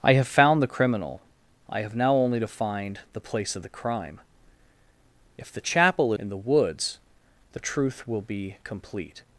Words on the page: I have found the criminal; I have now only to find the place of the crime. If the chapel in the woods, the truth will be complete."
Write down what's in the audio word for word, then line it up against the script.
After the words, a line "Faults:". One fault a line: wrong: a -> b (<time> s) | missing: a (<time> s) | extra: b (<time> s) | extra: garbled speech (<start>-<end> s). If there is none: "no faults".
I have found the criminal; I have now only to find the place of the crime. If the chapel in the woods, the truth will be complete."
Faults:
no faults